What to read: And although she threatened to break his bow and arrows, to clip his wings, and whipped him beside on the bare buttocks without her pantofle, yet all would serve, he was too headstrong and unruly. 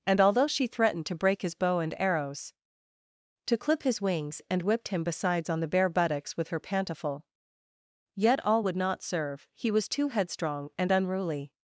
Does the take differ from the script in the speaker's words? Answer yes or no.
yes